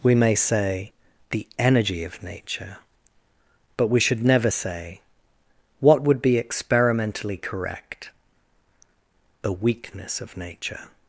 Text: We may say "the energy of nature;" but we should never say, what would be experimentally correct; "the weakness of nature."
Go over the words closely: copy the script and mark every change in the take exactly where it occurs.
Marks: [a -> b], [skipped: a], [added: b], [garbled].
We may say "the energy of nature;" but we should never say, what would be experimentally correct; "the weakness of nature."